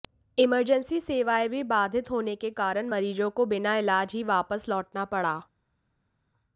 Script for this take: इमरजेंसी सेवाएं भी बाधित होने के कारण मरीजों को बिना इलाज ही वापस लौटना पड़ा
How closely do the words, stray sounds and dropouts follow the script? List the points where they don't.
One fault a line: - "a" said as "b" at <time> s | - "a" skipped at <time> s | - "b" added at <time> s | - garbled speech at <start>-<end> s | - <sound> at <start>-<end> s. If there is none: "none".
none